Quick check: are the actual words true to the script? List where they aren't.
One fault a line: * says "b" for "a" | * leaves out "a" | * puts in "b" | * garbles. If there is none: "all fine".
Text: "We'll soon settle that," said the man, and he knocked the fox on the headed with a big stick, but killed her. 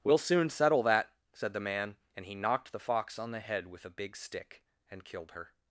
* says "head" for "headed"
* says "and" for "but"